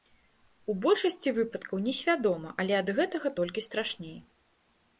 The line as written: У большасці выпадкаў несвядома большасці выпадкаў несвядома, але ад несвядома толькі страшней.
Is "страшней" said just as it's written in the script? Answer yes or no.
yes